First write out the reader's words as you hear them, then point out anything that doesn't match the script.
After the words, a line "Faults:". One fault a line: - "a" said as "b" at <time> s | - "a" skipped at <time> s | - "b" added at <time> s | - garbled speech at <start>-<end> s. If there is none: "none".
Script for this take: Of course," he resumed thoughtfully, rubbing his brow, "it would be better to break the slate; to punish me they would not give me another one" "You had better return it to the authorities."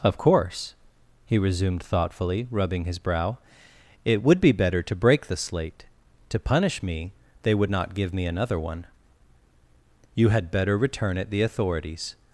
Of course," he resumed thoughtfully, rubbing his brow, "it would be better to break the slate; to punish me they would not give me another one" "You had better return it the authorities."
Faults:
- "to" skipped at 11.3 s